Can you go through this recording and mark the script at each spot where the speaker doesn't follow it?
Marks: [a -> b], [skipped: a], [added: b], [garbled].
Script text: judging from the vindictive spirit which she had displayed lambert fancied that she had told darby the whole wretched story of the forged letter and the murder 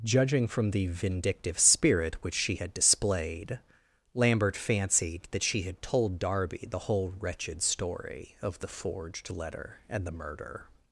judging from the vindictive spirit which she had displayed lambert fancied that she had told darby the whole wretched story of the forged letter and the murder